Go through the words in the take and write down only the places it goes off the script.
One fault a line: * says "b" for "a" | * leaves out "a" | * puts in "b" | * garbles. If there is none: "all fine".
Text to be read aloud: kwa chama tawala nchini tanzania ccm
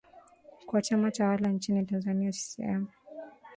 all fine